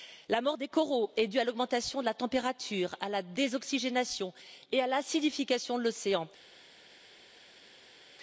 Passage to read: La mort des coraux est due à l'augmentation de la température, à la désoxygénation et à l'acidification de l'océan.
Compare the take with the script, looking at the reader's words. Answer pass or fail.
pass